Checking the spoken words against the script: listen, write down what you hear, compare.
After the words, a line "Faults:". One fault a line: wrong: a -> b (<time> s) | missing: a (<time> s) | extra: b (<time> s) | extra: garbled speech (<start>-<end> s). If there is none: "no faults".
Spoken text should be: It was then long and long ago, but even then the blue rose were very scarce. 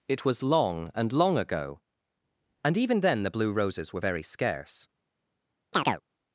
It was long and long ago, and even then the blue roses were very scarce.
Faults:
missing: then (0.4 s)
wrong: but -> and (2.6 s)
wrong: rose -> roses (3.5 s)